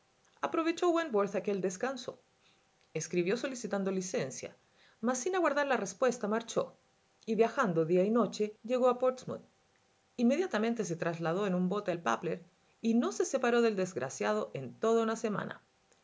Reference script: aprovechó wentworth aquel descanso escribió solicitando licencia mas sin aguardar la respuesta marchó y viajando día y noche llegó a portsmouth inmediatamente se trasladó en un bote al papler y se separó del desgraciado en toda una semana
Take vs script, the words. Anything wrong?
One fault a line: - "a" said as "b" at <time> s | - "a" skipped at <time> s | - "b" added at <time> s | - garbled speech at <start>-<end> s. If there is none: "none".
- "no" added at 12.9 s